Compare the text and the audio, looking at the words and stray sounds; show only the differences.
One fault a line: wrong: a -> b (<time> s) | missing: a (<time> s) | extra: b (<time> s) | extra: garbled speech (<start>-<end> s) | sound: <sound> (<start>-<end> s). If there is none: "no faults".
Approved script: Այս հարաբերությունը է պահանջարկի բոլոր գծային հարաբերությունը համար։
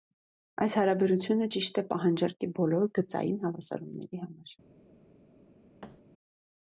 extra: ճիշտ (1.5 s)
wrong: հարաբերությունը -> հավասարումների (3.5 s)
sound: thud (5.8-6.0 s)